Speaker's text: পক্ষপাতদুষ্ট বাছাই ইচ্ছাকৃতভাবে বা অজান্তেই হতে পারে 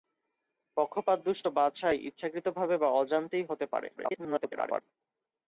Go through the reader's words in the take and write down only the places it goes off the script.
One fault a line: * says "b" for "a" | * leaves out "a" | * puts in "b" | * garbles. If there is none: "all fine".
* garbles